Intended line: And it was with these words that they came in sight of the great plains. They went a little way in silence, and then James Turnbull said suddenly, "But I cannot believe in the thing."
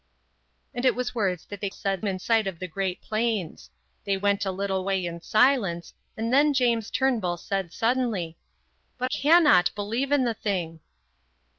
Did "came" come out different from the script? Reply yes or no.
yes